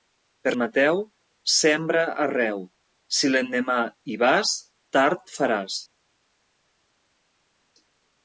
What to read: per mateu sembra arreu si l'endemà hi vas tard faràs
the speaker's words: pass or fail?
pass